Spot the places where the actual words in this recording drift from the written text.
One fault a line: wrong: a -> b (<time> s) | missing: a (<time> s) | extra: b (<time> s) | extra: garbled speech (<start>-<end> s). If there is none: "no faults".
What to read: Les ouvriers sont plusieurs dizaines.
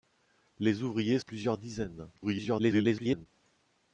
missing: sont (1.2 s)
extra: garbled speech (2.2-3.3 s)